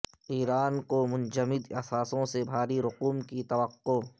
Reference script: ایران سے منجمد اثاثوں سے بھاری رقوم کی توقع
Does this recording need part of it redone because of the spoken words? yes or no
yes